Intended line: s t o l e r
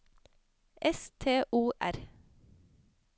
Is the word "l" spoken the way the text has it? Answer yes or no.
no